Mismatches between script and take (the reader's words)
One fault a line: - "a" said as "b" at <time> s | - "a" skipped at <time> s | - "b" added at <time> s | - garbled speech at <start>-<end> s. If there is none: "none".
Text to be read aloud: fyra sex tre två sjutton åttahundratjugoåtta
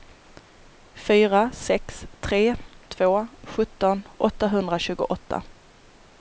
none